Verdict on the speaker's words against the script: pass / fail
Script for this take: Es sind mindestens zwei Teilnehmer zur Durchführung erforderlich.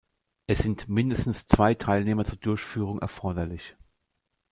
pass